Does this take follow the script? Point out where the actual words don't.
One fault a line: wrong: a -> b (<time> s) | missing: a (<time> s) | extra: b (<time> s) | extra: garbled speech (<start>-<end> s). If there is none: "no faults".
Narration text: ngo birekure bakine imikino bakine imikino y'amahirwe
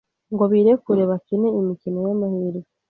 missing: bakine imikino (2.0 s)